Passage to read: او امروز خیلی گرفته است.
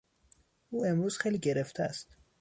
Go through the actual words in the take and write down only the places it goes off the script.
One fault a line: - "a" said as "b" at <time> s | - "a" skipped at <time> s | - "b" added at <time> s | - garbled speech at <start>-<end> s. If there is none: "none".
none